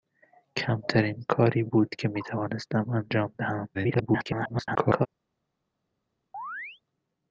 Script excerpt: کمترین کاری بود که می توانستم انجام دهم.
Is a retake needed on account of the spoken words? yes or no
yes